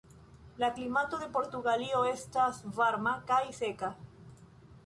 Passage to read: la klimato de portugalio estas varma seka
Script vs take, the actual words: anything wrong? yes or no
yes